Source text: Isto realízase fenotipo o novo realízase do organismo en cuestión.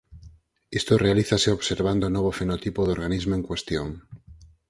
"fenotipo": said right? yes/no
no